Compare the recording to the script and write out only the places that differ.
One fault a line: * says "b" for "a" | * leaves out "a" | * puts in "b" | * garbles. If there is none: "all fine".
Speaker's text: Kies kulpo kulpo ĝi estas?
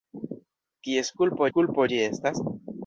all fine